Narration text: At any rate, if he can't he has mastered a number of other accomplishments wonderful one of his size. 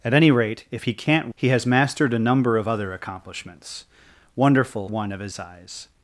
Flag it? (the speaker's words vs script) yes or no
no